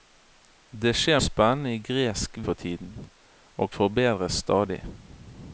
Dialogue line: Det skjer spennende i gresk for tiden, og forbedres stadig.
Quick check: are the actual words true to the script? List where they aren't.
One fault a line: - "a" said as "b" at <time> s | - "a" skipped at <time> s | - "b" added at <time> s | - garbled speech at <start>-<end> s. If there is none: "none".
none